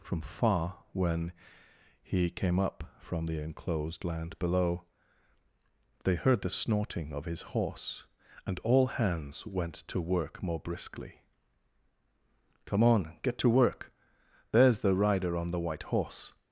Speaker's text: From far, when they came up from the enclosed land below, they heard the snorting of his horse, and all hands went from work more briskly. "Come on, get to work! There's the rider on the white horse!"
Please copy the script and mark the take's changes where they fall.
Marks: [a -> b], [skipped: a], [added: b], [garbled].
From far, when [they -> he] came up from the enclosed land below, they heard the snorting of his horse, and all hands went [from -> to] work more briskly. "Come on, get to work! There's the rider on the white horse!"